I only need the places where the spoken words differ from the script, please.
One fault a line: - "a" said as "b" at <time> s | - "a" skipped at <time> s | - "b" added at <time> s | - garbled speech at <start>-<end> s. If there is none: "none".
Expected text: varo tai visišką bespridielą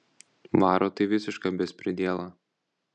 none